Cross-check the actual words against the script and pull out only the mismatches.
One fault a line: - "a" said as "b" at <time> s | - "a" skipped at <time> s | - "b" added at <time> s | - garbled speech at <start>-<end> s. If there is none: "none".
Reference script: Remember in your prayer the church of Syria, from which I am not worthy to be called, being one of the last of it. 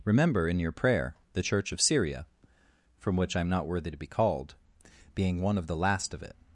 none